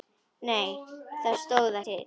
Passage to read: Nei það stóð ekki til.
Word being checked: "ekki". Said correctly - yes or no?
no